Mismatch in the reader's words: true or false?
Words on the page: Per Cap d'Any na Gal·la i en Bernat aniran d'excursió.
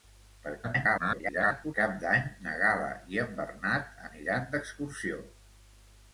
true